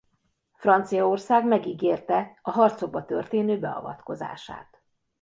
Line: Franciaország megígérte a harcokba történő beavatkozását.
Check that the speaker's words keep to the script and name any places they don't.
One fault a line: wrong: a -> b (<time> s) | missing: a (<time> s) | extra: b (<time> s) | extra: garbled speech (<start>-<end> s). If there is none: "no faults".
no faults